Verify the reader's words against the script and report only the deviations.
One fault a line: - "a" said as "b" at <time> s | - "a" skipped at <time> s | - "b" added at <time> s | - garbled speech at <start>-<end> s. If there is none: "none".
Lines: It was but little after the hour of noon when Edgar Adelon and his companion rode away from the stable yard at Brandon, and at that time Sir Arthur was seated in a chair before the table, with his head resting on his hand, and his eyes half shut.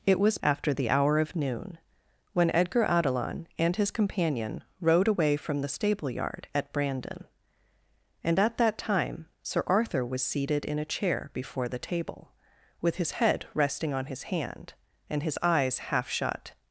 - "but little" skipped at 0.4 s